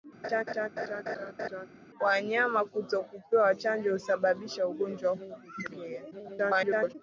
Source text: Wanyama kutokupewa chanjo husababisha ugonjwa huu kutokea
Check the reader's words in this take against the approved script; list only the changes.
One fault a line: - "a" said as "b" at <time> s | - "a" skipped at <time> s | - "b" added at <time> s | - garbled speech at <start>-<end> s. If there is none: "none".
- garbled speech at 6.1-7.0 s